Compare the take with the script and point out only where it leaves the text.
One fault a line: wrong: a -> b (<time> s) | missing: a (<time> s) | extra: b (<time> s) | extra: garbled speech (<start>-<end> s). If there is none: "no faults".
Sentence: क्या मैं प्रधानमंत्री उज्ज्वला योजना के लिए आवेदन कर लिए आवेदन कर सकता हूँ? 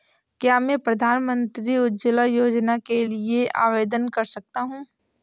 missing: लिए आवेदन कर (4.2 s)